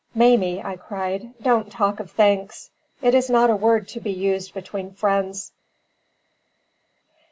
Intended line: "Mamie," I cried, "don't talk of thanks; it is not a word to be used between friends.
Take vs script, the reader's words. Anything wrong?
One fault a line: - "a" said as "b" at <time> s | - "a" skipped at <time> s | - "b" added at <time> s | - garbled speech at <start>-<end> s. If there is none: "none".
none